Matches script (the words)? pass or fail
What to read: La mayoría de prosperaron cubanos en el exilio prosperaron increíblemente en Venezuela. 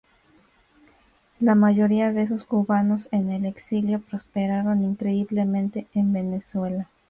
fail